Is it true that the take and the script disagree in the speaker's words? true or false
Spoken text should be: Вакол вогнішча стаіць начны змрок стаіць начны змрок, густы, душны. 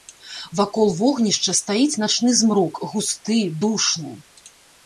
true